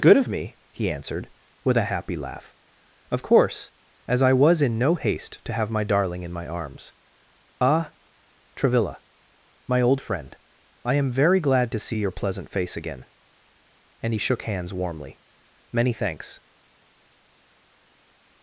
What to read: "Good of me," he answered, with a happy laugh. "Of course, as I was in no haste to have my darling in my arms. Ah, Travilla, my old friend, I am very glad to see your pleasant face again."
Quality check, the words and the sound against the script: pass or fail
fail